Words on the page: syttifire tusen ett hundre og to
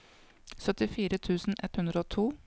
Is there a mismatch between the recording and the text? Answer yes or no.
no